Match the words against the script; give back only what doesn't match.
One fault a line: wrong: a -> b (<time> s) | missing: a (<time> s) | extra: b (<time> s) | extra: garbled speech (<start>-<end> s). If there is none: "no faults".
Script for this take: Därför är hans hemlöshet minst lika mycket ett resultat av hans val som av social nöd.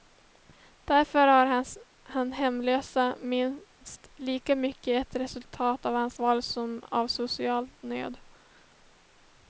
no faults